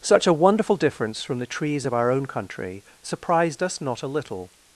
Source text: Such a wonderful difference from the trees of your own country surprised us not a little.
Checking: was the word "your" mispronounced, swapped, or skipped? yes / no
yes